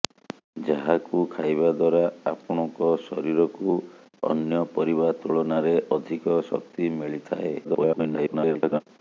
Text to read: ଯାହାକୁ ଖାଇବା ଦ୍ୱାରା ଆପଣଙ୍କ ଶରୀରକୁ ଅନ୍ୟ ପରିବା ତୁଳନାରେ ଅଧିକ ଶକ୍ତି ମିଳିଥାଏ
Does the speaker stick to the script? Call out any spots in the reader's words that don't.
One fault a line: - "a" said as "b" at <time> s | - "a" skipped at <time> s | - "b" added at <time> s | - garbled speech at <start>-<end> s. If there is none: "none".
- garbled speech at 7.6-8.8 s